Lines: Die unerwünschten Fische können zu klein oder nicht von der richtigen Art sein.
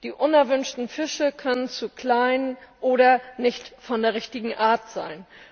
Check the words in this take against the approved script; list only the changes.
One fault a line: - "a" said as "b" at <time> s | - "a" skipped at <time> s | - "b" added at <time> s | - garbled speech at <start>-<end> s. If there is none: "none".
none